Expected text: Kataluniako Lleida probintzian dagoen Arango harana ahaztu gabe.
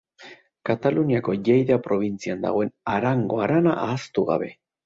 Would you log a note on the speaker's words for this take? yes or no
no